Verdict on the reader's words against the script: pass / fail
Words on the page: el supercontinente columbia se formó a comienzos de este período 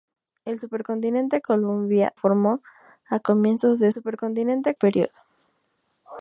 fail